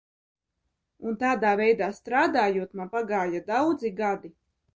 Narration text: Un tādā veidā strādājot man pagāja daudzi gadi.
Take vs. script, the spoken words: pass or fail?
pass